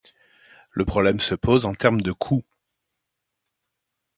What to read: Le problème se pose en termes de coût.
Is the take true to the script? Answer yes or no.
yes